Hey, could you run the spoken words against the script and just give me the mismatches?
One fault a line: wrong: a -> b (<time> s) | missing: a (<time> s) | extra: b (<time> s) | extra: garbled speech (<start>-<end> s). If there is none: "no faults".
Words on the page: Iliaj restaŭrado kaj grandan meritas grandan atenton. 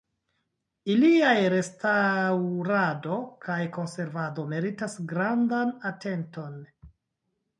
wrong: grandan -> konservado (3.8 s)